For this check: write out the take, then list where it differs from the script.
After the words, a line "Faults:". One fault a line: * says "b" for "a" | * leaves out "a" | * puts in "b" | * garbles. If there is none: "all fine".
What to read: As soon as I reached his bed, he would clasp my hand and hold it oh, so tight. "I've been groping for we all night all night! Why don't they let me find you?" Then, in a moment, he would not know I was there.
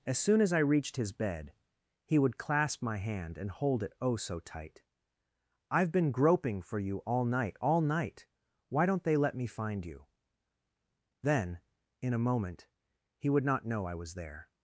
As soon as I reached his bed, he would clasp my hand and hold it oh, so tight. "I've been groping for you all night all night! Why don't they let me find you?" Then, in a moment, he would not know I was there.
Faults:
* says "you" for "we"